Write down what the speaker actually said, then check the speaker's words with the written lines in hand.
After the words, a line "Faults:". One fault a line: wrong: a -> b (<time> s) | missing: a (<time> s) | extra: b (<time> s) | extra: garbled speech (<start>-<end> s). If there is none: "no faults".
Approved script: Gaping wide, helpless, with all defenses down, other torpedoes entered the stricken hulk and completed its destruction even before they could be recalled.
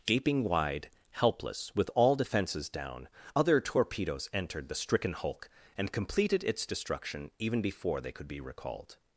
Gaping wide, helpless, with all defenses down, other torpedoes entered the stricken hulk and completed its destruction even before they could be recalled.
Faults:
no faults